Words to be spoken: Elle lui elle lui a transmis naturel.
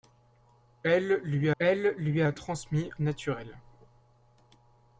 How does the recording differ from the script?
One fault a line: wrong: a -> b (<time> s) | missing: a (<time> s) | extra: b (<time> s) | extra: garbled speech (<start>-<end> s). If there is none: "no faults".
no faults